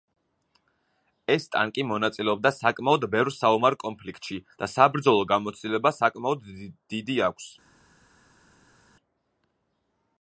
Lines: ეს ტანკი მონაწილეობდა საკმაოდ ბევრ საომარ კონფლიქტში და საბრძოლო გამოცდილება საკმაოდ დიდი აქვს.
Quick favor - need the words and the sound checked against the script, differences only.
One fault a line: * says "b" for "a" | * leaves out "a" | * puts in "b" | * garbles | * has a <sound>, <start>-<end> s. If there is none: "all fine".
all fine